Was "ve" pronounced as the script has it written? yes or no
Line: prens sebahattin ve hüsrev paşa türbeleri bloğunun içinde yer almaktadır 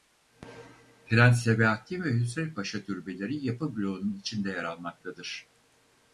yes